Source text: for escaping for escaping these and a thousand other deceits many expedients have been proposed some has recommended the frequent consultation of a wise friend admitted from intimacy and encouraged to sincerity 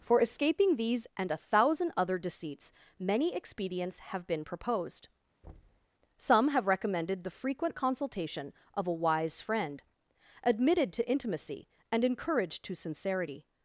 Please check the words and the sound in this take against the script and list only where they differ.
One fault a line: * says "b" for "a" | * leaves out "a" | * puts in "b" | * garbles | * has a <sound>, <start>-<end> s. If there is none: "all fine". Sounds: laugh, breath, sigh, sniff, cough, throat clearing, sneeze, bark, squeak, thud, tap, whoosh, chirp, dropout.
* leaves out "for escaping"
* has a thud, 5.4-5.9 s
* says "have" for "has"
* says "to" for "from"